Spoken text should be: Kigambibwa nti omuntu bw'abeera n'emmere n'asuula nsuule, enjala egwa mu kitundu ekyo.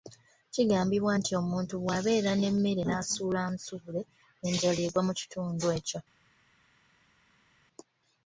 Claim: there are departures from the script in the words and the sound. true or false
false